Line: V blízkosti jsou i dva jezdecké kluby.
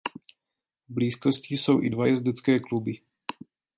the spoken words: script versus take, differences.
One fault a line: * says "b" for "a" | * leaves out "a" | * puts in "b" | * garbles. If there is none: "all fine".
all fine